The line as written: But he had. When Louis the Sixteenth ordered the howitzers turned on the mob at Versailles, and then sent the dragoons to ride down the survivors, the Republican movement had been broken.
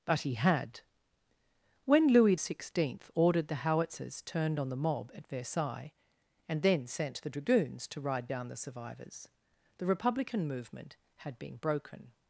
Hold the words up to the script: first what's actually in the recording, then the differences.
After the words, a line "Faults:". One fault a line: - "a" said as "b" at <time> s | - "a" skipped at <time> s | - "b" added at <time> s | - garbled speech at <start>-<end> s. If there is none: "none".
But he had. When Louis Sixteenth ordered the howitzers turned on the mob at Versailles, and then sent the dragoons to ride down the survivors, the Republican movement had been broken.
Faults:
- "the" skipped at 2.4 s